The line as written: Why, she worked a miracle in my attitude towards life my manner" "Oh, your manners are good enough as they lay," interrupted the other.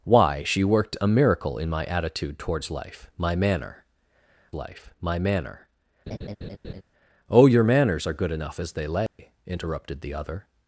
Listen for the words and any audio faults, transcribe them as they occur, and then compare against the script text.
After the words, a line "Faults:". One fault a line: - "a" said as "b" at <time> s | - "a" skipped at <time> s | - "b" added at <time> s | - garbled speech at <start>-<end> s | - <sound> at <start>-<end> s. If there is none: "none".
Why, she worked a miracle in my attitude towards life my manner life my manner" "Oh, your manners are good enough as they lay," interrupted the other.
Faults:
- "life my manner" added at 4.5 s
- laugh at 6.1-6.8 s
- dropout at 9.1-9.2 s